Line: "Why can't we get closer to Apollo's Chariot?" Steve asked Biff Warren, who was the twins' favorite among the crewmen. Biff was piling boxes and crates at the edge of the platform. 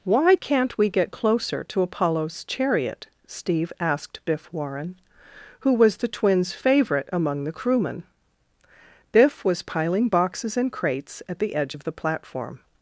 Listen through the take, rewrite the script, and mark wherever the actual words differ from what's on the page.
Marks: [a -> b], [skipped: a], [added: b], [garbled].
"Why can't we get closer to Apollo's Chariot?" Steve asked Biff Warren, who was the twins' favorite among the crewmen. Biff was piling boxes and crates at the edge of the platform.